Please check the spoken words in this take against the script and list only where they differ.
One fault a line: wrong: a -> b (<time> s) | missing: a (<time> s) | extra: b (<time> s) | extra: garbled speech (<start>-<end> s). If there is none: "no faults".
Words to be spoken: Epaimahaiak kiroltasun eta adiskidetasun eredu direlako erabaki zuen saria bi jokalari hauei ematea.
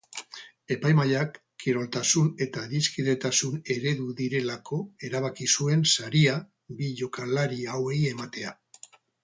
no faults